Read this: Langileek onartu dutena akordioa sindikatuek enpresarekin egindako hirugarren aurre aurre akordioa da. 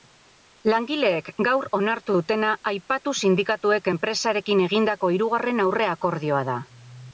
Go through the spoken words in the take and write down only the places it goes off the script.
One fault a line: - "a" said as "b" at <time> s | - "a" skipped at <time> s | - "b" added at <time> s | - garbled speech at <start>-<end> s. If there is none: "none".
- "gaur" added at 1.5 s
- "akordioa" said as "aipatu" at 2.7 s
- "aurre" skipped at 5.9 s